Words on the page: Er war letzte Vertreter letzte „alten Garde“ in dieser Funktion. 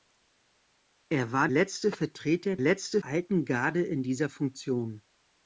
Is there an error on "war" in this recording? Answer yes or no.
no